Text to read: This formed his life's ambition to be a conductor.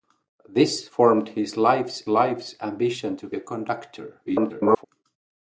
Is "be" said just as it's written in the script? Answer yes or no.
no